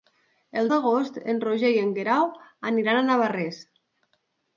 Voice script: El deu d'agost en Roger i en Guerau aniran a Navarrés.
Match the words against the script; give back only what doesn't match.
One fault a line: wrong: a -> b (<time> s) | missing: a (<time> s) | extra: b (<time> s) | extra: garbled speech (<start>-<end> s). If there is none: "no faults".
missing: deu (0.7 s)